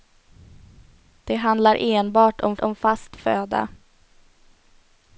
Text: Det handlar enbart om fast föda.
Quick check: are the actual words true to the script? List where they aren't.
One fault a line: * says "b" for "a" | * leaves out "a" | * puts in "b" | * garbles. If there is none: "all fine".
* puts in "om"